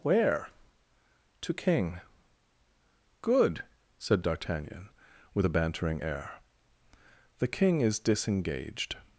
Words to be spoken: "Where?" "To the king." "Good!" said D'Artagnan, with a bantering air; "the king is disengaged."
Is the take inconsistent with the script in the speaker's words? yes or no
yes